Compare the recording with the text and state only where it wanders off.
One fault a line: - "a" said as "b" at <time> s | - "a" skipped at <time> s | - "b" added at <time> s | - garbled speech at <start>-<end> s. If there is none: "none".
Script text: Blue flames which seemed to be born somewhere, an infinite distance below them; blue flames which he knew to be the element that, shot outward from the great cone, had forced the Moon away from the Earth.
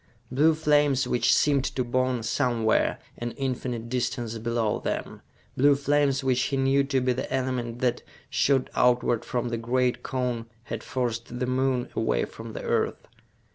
- "be" skipped at 1.8 s